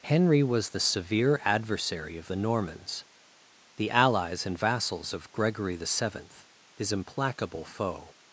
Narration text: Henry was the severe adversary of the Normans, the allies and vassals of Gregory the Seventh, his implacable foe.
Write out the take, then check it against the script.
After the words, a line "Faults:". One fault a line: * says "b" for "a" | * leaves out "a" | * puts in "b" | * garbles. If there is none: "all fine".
Henry was the severe adversary of the Normans, the allies and vassals of Gregory the Seventh, his implacable foe.
Faults:
all fine